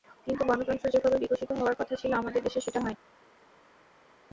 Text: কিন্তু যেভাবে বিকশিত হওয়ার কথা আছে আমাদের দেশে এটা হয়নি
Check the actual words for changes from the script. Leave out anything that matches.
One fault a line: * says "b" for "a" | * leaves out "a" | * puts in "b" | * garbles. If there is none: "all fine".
* puts in "গণতন্ত্র"
* says "ছিল" for "আছে"
* says "সেটা" for "এটা"